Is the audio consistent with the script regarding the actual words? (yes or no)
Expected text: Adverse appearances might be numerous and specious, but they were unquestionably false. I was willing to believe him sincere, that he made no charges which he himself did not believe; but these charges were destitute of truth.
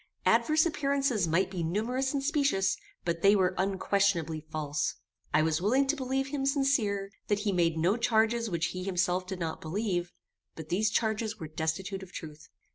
yes